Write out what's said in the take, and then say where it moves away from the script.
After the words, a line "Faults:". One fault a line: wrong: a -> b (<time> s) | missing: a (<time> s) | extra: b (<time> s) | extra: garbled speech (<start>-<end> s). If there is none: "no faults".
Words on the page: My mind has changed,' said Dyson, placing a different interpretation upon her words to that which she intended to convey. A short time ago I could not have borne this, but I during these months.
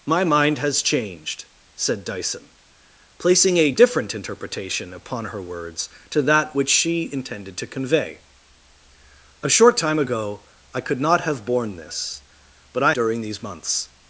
My mind has changed,' said Dyson, placing a different interpretation upon her words to that which she intended to convey. A short time ago I could not have borne this, but I during these months.
Faults:
no faults